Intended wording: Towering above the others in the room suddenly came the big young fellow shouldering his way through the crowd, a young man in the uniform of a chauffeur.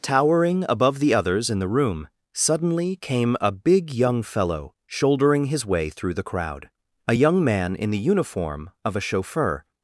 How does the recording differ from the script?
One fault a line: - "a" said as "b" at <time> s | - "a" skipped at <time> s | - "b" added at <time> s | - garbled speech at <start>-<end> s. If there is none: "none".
- "the" said as "a" at 3.4 s